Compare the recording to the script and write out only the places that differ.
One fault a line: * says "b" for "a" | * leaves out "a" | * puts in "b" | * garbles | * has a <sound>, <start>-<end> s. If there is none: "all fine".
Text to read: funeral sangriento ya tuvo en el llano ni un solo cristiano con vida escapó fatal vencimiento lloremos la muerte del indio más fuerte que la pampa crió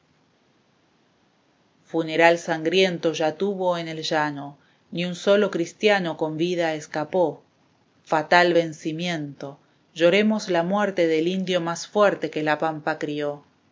all fine